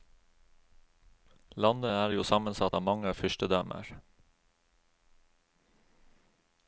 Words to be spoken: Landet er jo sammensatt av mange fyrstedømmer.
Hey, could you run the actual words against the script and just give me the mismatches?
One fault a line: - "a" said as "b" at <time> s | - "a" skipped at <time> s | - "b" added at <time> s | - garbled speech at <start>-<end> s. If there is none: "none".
none